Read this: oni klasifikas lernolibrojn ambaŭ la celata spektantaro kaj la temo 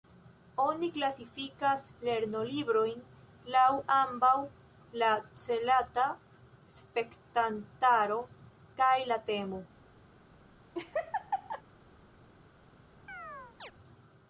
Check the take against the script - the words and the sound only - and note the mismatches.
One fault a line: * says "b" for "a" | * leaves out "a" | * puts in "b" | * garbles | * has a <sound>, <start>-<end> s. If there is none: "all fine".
* puts in "laŭ"
* has a laugh, 10.7-11.6 s
* has a chirp, 13.1-13.7 s